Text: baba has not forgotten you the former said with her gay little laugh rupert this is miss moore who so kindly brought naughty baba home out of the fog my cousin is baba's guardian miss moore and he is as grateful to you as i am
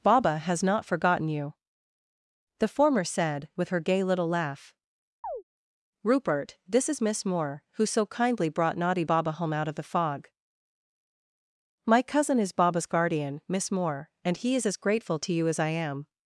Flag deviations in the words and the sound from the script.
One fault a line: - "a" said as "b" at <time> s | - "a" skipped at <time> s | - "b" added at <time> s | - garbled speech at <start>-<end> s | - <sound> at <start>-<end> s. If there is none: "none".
- chirp at 5.2-5.4 s